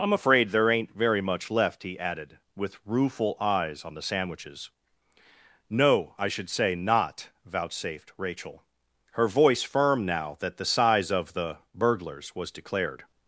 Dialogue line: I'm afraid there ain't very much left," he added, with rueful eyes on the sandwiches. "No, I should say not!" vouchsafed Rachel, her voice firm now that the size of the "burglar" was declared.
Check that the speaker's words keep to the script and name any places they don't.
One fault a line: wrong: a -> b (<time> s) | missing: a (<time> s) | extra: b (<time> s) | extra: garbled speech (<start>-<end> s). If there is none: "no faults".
wrong: burglar -> burglars (11.7 s)